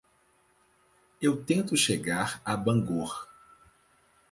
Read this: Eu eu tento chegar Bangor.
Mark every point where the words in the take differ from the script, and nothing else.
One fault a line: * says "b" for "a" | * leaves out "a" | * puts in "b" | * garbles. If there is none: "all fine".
* leaves out "eu"
* puts in "a"